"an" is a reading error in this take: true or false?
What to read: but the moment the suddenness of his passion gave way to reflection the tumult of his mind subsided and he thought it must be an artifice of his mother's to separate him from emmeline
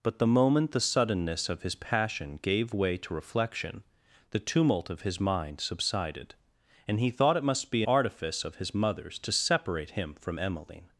true